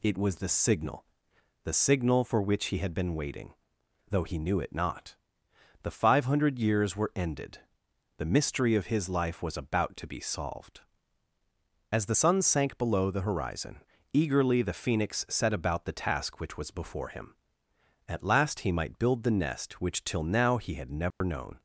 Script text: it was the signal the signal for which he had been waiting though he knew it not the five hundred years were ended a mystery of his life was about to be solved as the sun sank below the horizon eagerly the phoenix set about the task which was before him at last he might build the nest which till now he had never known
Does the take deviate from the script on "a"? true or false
true